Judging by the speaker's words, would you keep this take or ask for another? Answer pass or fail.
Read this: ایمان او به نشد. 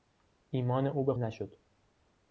pass